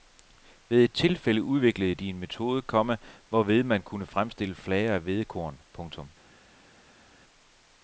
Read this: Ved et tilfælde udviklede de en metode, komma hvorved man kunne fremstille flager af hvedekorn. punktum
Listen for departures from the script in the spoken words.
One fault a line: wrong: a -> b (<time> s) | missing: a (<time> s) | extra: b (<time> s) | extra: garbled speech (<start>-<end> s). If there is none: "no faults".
no faults